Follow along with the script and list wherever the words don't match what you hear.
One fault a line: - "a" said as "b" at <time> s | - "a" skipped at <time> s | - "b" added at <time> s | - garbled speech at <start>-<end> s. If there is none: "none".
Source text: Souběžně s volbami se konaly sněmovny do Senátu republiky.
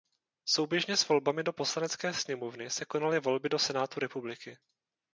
- "do Poslanecké sněmovny" added at 1.4 s
- "sněmovny" said as "volby" at 3.2 s